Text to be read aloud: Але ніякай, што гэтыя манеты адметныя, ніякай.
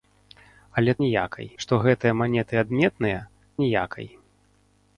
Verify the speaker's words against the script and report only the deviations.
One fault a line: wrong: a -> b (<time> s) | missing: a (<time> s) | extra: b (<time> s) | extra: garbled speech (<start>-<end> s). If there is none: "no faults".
no faults